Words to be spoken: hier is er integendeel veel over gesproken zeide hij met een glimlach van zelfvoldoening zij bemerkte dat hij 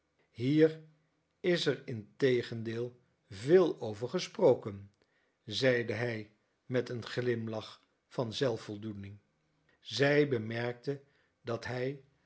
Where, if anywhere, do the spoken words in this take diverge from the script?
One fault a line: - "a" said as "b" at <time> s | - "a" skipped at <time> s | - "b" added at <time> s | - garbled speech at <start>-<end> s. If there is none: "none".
none